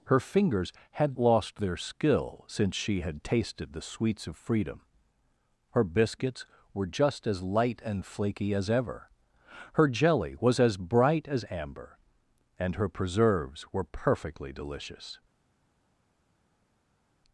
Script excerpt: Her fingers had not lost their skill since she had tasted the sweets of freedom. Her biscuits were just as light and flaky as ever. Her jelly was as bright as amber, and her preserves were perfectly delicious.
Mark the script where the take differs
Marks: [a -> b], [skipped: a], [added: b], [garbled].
Her fingers had [skipped: not] lost their skill since she had tasted the sweets of freedom. Her biscuits were just as light and flaky as ever. Her jelly was as bright as amber, and her preserves were perfectly delicious.